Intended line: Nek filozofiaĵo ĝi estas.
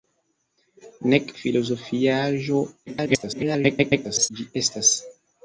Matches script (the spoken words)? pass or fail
fail